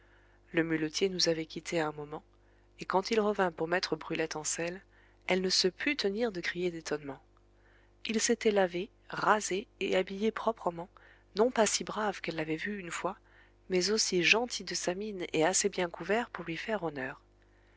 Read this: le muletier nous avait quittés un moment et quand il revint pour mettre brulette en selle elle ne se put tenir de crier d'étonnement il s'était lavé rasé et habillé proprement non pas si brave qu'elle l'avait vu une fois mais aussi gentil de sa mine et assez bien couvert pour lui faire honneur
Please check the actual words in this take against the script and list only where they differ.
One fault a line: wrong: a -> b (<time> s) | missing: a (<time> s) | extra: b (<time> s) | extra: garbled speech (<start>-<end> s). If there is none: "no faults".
no faults